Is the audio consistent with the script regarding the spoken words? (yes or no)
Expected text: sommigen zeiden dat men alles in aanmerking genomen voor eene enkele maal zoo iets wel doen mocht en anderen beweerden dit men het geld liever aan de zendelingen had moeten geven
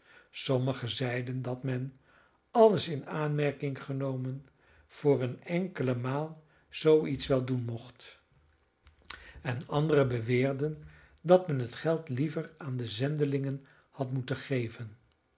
no